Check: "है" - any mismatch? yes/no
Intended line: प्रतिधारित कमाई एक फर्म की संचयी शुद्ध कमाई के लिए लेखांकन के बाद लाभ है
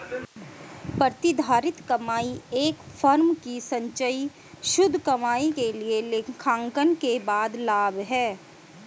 no